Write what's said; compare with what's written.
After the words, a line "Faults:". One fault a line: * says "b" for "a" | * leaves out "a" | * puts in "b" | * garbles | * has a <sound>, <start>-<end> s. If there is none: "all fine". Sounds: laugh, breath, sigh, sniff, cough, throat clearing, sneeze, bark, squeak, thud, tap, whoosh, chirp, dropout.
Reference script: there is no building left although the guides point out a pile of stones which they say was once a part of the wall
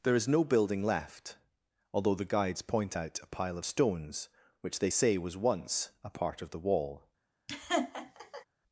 there is no building left although the guides point out a pile of stones which they say was once a part of the wall
Faults:
* has a laugh, 7.5-8.5 s